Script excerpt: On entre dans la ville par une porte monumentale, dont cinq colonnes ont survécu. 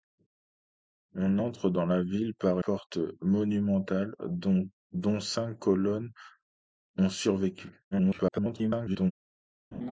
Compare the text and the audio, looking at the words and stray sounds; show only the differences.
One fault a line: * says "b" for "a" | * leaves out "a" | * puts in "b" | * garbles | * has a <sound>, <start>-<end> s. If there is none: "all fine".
* leaves out "une"
* garbles
* has a laugh, 9.7-9.9 s